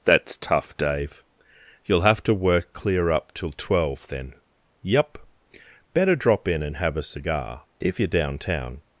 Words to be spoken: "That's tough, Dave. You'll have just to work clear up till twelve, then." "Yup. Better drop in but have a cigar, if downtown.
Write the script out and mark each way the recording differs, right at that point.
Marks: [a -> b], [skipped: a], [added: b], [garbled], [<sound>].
"That's tough, Dave. You'll have [skipped: just] to work clear up till twelve, then." "Yup. Better drop in [but -> and] have a cigar, if [added: you're] downtown.